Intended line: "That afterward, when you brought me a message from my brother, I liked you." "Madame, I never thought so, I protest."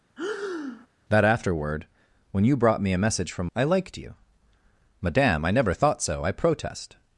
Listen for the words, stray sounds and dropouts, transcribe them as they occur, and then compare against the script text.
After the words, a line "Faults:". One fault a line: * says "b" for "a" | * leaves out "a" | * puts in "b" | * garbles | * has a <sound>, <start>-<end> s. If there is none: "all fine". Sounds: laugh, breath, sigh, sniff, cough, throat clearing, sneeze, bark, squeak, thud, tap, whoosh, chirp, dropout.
"That afterward, when you brought me a message from I liked you." "Madame, I never thought so, I protest."
Faults:
* has a breath, 0.2-0.9 s
* leaves out "my brother"